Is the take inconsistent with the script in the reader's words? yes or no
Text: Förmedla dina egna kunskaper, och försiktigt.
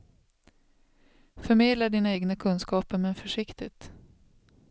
yes